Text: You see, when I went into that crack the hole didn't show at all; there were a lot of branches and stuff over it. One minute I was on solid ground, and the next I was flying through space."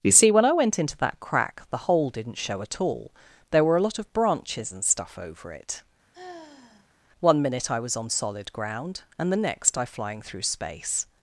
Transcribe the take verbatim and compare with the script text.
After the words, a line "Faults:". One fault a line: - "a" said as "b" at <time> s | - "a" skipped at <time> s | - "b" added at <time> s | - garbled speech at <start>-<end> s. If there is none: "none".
You see, when I went into that crack the hole didn't show at all; there were a lot of branches and stuff over it. One minute I was on solid ground, and the next I flying through space."
Faults:
- "was" skipped at 9.8 s